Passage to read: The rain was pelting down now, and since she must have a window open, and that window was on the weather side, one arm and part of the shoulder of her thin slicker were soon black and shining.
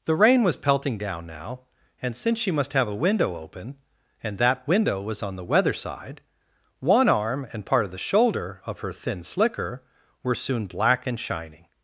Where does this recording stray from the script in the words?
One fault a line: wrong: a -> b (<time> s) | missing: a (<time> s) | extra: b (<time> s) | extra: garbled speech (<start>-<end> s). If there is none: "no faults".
no faults